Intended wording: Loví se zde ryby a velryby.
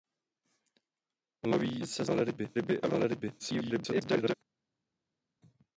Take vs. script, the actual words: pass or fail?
fail